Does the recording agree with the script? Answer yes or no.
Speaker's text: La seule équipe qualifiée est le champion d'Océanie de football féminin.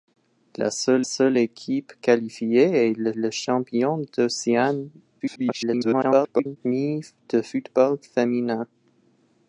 no